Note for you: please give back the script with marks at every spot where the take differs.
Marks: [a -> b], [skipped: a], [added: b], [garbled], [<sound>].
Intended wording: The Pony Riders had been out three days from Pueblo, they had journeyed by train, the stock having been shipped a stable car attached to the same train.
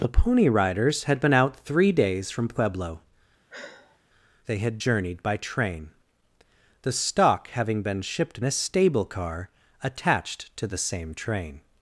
The Pony Riders had been out three days from Pueblo, [sigh] they had journeyed by train, the stock having been shipped a stable car attached to the same train.